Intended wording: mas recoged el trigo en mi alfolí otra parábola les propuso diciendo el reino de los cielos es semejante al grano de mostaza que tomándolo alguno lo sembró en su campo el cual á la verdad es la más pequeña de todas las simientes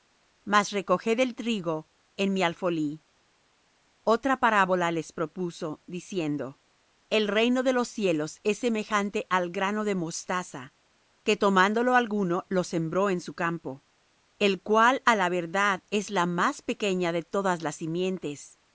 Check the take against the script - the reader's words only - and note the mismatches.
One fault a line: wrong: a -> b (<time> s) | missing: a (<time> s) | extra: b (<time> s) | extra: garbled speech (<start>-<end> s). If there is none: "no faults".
no faults